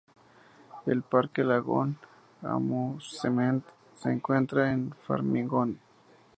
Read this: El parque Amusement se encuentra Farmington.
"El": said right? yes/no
yes